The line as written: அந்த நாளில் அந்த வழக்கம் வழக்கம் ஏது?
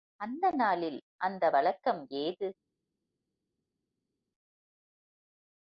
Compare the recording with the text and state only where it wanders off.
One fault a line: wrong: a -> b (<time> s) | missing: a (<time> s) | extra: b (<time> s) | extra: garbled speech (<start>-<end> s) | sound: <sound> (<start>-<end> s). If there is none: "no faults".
missing: வழக்கம் (2.0 s)